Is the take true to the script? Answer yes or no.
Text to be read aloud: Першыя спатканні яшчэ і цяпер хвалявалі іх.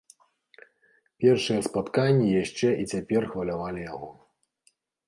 no